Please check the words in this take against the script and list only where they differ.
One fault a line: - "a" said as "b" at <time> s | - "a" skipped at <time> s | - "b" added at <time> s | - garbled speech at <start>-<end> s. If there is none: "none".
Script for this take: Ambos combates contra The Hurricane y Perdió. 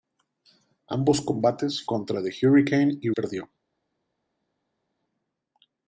none